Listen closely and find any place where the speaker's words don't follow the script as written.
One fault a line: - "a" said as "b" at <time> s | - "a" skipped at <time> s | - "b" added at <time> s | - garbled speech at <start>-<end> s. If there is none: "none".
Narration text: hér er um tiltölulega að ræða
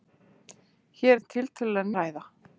none